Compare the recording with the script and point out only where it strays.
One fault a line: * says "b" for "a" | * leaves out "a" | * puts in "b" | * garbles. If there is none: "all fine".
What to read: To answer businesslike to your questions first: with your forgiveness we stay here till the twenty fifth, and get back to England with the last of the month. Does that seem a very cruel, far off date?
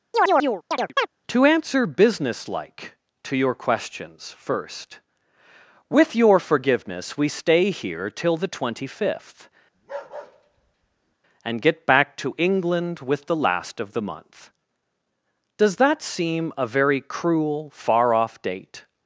all fine